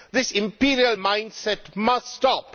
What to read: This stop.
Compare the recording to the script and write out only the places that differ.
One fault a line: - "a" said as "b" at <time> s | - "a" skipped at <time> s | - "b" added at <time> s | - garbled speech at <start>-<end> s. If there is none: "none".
- "imperial mindset must" added at 0.3 s